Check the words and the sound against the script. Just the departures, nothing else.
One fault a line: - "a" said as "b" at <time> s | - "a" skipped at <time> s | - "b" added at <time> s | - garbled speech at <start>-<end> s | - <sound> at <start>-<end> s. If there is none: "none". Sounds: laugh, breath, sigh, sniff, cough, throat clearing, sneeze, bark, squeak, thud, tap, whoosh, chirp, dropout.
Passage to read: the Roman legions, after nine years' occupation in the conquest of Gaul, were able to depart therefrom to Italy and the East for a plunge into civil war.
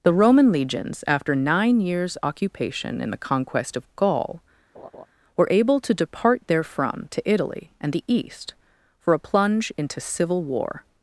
- laugh at 4.7-5.1 s